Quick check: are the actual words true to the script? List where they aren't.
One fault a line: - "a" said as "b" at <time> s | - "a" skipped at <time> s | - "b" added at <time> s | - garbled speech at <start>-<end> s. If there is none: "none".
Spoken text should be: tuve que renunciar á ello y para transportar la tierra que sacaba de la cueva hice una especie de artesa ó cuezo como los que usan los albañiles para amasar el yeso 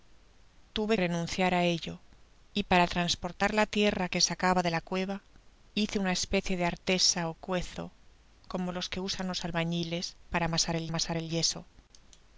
- "que" skipped at 0.9 s
- "amasar el" added at 10.9 s